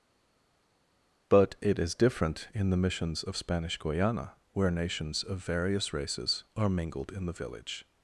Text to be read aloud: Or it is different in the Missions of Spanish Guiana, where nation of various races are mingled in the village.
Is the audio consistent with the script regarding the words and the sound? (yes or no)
no